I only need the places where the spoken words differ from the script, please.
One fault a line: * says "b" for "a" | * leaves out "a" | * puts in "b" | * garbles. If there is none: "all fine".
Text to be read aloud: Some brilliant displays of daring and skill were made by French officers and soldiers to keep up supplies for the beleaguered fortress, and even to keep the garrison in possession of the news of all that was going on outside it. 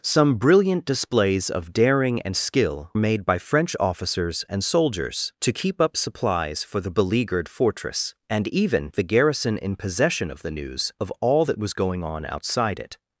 * leaves out "were"
* leaves out "to keep"